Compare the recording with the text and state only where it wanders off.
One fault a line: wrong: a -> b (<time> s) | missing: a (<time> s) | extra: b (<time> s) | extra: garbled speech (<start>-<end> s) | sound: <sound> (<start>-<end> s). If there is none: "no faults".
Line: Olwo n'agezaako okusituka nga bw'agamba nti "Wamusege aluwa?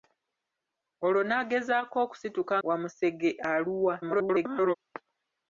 missing: nga bw'agamba nti (2.5 s)
extra: garbled speech (4.0-4.7 s)